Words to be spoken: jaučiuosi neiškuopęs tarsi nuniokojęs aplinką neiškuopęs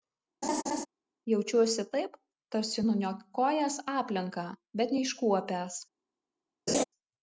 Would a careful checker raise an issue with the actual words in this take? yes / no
yes